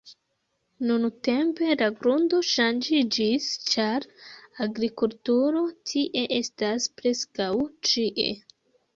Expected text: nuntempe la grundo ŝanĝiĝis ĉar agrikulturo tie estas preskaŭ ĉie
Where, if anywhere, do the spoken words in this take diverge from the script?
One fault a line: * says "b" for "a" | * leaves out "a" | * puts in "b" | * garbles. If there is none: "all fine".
all fine